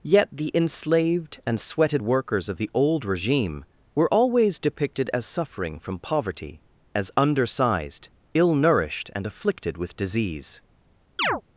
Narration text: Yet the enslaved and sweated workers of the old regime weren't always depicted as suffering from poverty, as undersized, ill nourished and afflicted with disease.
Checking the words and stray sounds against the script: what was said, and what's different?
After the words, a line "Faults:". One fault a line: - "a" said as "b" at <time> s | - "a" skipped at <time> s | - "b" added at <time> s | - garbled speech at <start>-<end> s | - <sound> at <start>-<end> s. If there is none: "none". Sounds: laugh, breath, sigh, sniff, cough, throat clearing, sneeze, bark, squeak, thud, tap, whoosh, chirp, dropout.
Yet the enslaved and sweated workers of the old regime were always depicted as suffering from poverty, as undersized, ill nourished and afflicted with disease.
Faults:
- "weren't" said as "were" at 3.9 s
- chirp at 11.2-11.4 s